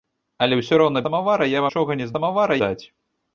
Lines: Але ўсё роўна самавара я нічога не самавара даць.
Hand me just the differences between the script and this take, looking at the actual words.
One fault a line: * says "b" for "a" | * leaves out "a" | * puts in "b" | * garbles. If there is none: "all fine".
all fine